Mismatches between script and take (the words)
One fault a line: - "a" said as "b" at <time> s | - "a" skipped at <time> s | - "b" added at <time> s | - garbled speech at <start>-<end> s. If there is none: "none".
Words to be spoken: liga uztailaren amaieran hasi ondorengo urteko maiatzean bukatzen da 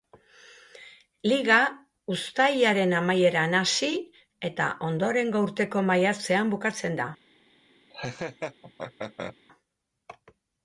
- "eta" added at 4.5 s